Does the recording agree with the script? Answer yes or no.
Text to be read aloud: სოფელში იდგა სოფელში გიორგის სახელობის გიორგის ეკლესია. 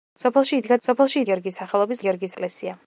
yes